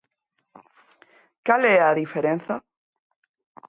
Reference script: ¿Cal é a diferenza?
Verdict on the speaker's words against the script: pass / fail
pass